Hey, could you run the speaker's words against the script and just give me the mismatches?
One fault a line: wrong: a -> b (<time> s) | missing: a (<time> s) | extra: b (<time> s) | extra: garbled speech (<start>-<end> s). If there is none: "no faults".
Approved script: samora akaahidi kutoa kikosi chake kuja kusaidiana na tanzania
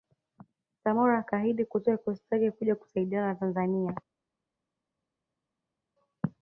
no faults